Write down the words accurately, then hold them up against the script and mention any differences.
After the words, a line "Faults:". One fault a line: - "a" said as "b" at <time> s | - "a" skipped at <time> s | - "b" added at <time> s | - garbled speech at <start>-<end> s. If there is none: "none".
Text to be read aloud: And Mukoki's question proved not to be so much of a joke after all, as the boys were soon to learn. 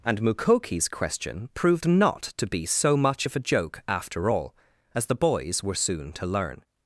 And Mukoki's question proved not to be so much of a joke after all, as the boys were soon to learn.
Faults:
none